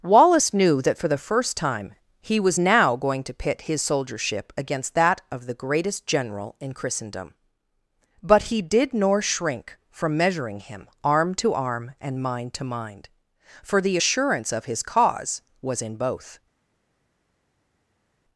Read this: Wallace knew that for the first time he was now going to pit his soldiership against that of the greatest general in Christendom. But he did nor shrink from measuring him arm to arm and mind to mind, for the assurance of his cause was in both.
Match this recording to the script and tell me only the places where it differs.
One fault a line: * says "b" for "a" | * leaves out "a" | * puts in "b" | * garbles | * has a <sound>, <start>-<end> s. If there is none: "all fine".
all fine